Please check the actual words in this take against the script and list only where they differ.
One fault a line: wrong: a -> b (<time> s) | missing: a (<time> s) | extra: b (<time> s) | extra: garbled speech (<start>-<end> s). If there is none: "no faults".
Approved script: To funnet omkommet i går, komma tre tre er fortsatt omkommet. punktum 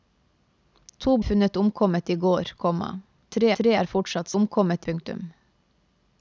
no faults